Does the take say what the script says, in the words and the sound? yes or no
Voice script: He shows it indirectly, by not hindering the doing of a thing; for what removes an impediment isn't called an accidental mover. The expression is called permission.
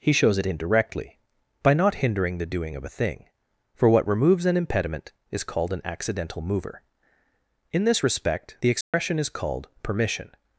no